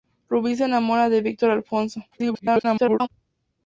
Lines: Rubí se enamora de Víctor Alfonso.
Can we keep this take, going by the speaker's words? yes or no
no